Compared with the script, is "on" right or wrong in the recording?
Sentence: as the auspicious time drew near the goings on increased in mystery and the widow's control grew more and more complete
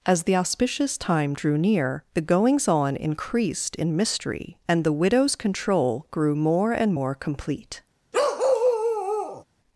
right